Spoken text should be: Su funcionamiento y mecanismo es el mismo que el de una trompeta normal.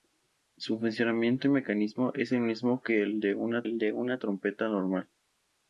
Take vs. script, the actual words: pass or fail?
fail